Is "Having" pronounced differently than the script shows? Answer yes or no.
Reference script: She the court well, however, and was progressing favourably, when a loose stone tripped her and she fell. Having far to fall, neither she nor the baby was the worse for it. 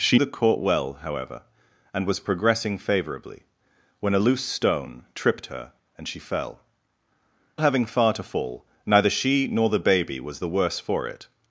no